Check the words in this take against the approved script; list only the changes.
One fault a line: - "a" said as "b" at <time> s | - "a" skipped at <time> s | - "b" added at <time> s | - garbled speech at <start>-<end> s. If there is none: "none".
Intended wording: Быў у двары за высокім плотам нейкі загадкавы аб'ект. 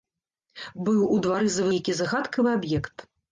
- "высокім плотам" skipped at 1.7 s